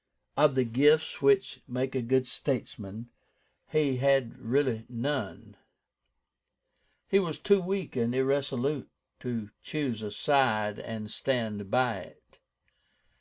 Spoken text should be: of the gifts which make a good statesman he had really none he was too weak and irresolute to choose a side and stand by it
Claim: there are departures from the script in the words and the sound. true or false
false